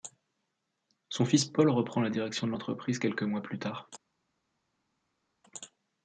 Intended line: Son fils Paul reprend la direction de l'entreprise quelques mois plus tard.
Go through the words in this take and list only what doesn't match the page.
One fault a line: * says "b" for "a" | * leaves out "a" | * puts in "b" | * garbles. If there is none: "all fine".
all fine